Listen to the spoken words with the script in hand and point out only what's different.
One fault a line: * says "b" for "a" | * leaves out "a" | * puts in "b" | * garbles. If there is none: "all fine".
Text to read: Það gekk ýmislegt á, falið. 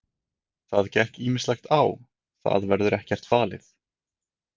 * puts in "það verður ekkert"